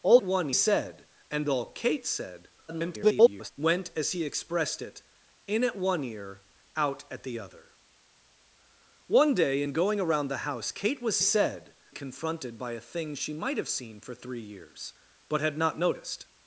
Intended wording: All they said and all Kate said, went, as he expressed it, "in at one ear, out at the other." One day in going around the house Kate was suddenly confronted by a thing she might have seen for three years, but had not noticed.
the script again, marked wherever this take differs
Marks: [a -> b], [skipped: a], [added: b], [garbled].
All [they -> one] said and all Kate said, [garbled] went, as he expressed it, "in at one ear, out at the other." One day in going around the house Kate was [suddenly -> said] confronted by a thing she might have seen for three years, but had not noticed.